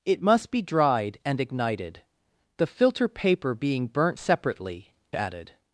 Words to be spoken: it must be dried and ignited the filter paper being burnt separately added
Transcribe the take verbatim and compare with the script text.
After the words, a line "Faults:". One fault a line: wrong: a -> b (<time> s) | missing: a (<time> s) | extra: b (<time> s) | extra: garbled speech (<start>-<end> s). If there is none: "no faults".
it must be dried and ignited the filter paper being burnt separately added
Faults:
no faults